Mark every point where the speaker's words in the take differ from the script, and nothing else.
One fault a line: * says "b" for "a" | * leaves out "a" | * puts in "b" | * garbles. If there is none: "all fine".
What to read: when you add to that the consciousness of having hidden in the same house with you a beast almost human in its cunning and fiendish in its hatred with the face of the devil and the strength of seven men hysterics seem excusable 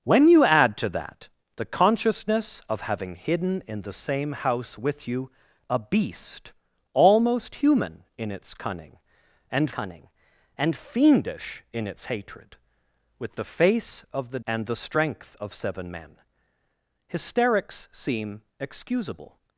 * puts in "cunning and"
* leaves out "devil"